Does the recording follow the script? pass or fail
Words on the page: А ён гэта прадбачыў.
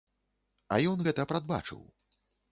pass